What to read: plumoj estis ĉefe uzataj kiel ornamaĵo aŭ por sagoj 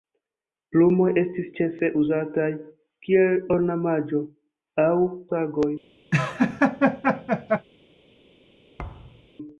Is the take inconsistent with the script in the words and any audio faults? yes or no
yes